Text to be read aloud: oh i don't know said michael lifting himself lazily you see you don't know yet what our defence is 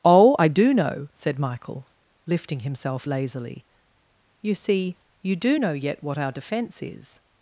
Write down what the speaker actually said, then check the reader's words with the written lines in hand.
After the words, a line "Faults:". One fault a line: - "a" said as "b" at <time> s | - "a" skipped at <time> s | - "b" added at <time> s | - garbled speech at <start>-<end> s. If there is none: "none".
oh i do know said michael lifting himself lazily you see you do know yet what our defence is
Faults:
- "don't" said as "do" at 0.5 s
- "don't" said as "do" at 5.4 s